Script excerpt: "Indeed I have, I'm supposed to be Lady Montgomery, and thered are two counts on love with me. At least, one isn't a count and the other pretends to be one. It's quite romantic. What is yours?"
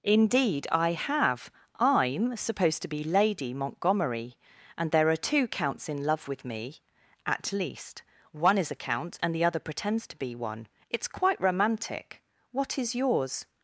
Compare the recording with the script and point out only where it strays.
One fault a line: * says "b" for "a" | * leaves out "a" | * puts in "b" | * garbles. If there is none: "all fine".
* says "there" for "thered"
* says "in" for "on"
* says "is" for "isn't"